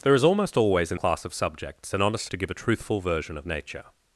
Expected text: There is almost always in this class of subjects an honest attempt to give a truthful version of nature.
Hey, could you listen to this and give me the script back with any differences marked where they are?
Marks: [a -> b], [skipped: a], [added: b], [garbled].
There is almost always in [skipped: this] class of subjects an honest [skipped: attempt] to give a truthful version of nature.